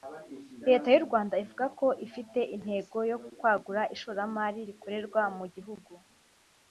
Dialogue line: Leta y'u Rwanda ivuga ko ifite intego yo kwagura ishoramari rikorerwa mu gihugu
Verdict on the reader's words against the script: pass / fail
pass